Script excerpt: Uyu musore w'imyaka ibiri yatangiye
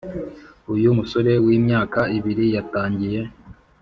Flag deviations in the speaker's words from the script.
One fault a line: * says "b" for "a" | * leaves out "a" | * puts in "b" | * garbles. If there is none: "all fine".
all fine